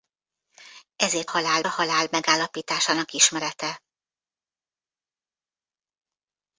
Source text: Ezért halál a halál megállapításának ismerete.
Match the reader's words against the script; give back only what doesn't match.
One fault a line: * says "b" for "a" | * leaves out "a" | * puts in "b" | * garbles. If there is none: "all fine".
all fine